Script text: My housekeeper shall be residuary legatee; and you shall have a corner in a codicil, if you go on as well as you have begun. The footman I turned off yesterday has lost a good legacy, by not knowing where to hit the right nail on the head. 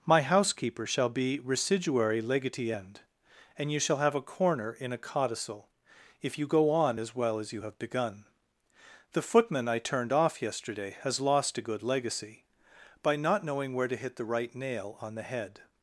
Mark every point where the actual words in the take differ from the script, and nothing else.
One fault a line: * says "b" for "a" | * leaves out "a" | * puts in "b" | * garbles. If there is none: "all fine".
* puts in "end"